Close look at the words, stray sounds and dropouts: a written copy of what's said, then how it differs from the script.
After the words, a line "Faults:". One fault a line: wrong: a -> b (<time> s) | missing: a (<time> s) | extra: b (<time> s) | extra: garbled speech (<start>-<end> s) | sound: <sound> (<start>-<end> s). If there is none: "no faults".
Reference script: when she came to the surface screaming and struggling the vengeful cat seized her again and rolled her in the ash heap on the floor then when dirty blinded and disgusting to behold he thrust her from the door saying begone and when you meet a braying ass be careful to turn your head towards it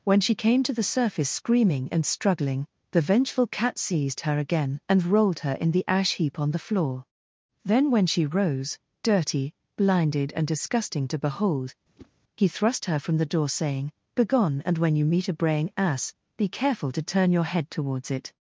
when she came to the surface screaming and struggling the vengeful cat seized her again and rolled her in the ash heap on the floor then when she rose dirty blinded and disgusting to behold he thrust her from the door saying begone and when you meet a braying ass be careful to turn your head towards it
Faults:
extra: she rose (8.1 s)
sound: whoosh (12.0-12.1 s)